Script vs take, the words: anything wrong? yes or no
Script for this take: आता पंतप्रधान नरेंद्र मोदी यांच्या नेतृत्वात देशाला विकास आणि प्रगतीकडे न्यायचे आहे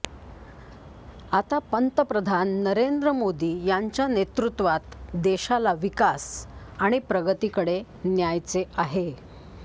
no